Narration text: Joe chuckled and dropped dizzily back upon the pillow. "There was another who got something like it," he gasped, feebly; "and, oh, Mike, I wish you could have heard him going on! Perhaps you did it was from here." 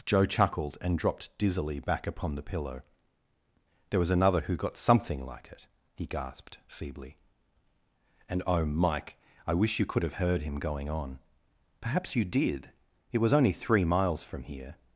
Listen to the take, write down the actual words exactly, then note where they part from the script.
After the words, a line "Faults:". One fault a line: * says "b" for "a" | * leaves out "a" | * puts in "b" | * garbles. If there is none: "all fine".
Joe chuckled and dropped dizzily back upon the pillow. "There was another who got something like it," he gasped, feebly; "and, oh, Mike, I wish you could have heard him going on! Perhaps you did it was only three miles from here."
Faults:
* puts in "only three miles"